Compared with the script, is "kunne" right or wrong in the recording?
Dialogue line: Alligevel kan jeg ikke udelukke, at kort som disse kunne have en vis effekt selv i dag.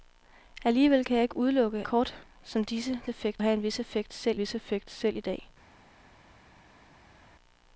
wrong